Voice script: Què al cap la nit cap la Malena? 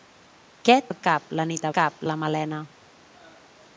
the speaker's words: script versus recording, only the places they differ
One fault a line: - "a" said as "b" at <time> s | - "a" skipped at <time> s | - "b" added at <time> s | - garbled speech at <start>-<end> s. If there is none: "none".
none